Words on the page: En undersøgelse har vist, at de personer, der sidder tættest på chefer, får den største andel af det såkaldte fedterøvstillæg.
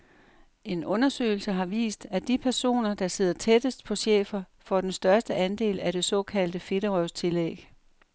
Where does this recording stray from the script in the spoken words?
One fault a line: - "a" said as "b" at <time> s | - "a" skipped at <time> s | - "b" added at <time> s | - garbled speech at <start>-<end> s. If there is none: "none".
none